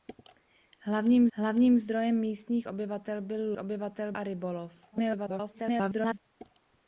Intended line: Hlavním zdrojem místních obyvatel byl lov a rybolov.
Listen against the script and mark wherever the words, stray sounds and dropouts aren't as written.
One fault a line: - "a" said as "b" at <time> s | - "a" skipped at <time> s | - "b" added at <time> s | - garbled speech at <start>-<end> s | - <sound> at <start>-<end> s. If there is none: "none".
- "hlavním" added at 1.3 s
- "lov" said as "obyvatel" at 3.6 s
- garbled speech at 4.9-6.2 s